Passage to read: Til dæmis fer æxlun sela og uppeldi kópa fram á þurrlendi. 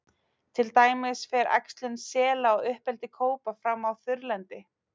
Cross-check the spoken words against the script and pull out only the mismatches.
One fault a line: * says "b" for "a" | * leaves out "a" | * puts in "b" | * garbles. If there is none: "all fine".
all fine